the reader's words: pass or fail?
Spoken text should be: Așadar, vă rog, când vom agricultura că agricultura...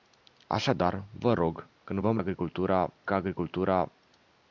pass